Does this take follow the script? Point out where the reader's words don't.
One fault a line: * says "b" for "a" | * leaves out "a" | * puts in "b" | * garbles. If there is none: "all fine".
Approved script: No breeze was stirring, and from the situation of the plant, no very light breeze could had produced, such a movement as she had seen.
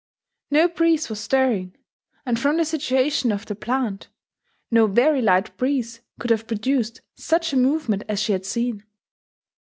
* says "have" for "had"